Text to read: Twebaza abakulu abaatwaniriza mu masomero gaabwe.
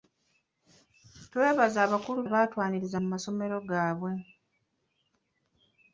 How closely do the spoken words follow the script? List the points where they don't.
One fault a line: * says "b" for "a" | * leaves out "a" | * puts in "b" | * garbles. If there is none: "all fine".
all fine